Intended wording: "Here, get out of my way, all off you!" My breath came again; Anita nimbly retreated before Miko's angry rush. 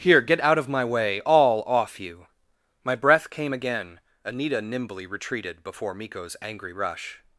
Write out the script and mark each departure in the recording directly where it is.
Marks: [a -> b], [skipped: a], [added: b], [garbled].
"Here, get out of my way, all off you!" My breath came again; Anita nimbly retreated before Miko's angry rush.